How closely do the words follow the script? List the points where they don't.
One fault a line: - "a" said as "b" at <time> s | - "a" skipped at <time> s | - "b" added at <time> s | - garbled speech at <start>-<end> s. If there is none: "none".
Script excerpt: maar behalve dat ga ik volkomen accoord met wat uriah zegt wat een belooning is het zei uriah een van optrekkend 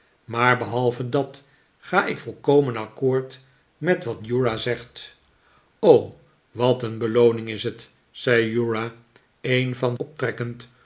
none